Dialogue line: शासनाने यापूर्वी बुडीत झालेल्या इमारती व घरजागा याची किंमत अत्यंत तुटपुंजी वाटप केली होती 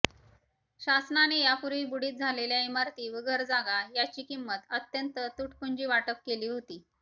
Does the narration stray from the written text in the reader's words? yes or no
no